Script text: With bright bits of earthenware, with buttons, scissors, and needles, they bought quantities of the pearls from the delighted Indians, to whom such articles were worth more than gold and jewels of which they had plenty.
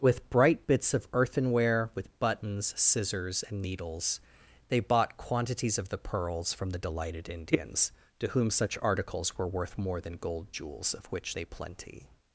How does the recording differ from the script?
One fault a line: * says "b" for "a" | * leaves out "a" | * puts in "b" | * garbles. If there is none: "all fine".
* leaves out "and"
* leaves out "had"